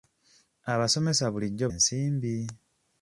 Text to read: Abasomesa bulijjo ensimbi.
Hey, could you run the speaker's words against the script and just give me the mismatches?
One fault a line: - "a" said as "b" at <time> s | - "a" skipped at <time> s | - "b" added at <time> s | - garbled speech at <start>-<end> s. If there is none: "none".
none